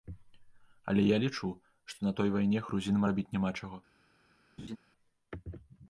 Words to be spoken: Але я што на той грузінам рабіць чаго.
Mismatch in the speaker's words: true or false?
true